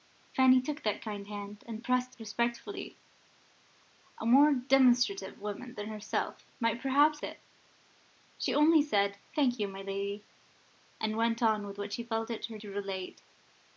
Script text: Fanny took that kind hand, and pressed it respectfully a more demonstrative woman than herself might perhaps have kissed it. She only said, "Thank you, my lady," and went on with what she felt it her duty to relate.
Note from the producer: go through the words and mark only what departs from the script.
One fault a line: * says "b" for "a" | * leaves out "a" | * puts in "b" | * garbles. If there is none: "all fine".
* leaves out "it"
* leaves out "have kissed"
* leaves out "duty"